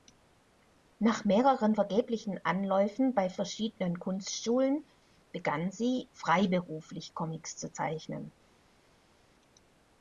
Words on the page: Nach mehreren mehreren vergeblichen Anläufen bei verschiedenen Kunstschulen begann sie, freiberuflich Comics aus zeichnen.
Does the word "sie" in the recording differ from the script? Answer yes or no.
no